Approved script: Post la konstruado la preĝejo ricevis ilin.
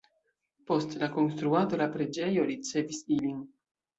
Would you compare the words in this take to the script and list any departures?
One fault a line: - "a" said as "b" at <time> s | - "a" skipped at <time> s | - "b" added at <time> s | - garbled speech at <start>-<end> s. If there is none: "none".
none